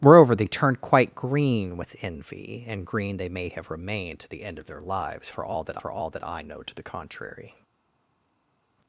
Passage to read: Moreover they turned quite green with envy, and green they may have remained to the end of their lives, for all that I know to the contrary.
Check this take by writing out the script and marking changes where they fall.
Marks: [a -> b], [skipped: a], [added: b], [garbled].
Moreover they turned quite green with envy, and green they may have remained to the end of their lives, for all that [added: for all that] I know to the contrary.